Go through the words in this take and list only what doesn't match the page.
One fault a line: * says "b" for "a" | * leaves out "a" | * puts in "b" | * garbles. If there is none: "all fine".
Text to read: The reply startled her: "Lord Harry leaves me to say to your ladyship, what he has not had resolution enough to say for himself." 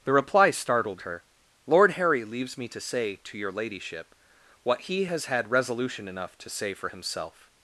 * leaves out "not"